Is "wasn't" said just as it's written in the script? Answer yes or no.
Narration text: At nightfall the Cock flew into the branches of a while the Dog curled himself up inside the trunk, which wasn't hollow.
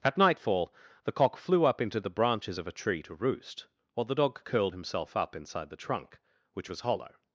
no